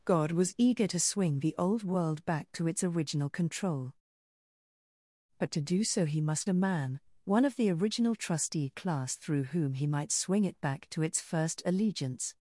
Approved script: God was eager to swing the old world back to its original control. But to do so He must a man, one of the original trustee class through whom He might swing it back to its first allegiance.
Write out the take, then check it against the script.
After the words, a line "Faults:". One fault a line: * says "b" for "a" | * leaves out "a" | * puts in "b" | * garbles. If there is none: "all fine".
God was eager to swing the old world back to its original control. But to do so He must a man, one of the original trustee class through whom He might swing it back to its first allegiance.
Faults:
all fine